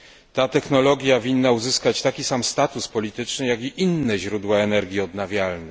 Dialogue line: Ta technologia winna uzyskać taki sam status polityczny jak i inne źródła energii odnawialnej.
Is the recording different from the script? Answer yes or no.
no